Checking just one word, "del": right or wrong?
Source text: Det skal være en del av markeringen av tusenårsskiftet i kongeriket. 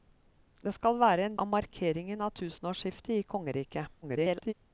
wrong